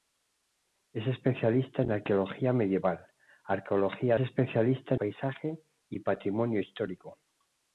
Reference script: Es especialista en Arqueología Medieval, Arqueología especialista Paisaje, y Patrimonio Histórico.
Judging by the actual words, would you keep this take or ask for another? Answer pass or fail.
pass